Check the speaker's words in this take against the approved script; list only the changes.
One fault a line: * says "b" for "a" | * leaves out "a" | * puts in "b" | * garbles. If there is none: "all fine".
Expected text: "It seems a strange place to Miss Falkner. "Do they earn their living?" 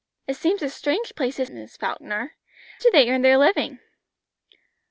all fine